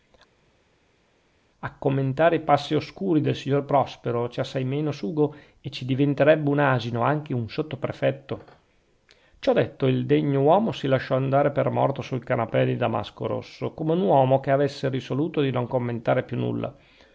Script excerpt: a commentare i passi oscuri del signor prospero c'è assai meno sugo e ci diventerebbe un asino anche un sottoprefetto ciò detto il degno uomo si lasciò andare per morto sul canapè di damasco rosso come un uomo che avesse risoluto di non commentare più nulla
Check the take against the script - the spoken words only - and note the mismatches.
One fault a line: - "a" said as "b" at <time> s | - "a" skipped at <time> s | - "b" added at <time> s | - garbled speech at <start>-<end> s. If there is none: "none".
none